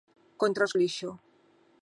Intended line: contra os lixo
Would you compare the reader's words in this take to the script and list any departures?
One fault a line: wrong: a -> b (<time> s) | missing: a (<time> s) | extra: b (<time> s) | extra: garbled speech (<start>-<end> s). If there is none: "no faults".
no faults